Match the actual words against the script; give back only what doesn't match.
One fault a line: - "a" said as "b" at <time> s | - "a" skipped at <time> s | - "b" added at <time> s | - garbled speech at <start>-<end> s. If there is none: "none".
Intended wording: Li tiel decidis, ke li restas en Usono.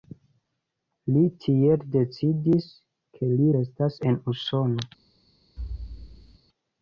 none